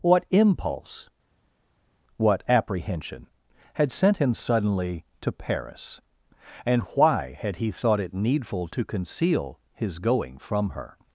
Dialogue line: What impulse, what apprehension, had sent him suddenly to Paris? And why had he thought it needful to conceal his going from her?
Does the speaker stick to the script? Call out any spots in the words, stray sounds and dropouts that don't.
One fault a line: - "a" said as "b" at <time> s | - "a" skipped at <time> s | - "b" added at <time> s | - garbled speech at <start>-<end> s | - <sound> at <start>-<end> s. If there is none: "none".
none